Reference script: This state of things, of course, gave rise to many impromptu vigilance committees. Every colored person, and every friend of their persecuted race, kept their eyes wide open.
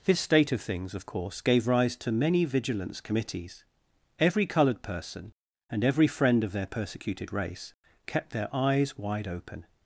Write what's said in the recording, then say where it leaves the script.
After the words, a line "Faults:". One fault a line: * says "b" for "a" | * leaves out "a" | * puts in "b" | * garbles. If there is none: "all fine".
This state of things, of course, gave rise to many vigilance committees. Every colored person, and every friend of their persecuted race, kept their eyes wide open.
Faults:
* leaves out "impromptu"